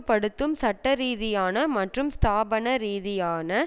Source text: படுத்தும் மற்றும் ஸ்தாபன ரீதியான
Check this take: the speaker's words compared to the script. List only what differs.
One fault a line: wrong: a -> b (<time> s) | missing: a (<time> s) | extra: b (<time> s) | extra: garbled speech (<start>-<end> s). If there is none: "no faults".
extra: சட்டரீதியான (0.6 s)